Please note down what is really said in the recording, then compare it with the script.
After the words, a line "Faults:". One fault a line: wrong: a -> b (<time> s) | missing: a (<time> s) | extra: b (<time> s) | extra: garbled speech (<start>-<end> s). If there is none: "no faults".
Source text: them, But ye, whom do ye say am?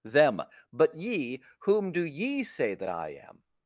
them, But ye, whom do ye say that I am?
Faults:
extra: that I (2.8 s)